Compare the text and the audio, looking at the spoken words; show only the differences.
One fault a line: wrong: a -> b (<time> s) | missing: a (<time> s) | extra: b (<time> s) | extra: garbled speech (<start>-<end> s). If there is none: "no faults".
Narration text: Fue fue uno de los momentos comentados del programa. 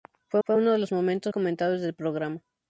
no faults